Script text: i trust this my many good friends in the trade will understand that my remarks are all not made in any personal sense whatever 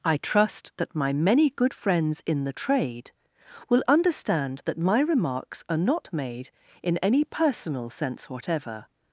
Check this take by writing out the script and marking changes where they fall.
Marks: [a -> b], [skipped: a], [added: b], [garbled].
i trust [this -> that] my many good friends in the trade will understand that my remarks are [skipped: all] not made in any personal sense whatever